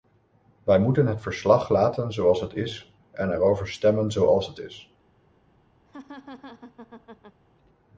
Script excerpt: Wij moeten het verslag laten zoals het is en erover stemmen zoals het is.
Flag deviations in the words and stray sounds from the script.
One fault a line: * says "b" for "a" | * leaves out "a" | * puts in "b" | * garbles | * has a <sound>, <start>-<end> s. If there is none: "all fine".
* has a laugh, 5.9-7.4 s